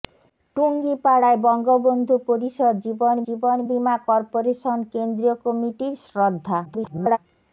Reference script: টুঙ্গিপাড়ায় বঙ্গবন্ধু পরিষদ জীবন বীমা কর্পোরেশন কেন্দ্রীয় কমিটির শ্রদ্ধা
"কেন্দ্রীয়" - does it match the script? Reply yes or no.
yes